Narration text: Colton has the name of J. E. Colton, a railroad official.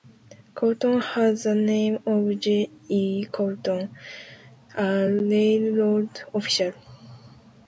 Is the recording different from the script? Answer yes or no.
no